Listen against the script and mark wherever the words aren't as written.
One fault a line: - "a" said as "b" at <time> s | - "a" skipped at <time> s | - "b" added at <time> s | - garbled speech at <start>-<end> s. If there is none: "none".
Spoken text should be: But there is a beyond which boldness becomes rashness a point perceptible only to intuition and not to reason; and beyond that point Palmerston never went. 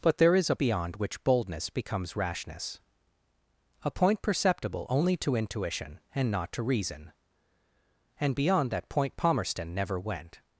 none